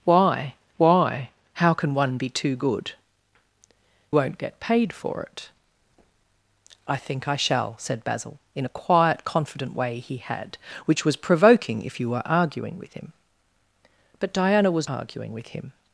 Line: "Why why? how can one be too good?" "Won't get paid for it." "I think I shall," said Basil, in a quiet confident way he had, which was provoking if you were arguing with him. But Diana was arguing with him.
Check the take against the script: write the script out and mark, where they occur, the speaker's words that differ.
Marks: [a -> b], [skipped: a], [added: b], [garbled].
"Why why? how can one be too good?" "Won't get paid for it." "I think I shall," said Basil, in a quiet confident way he had, which was provoking if you were arguing with him. But Diana was arguing with him.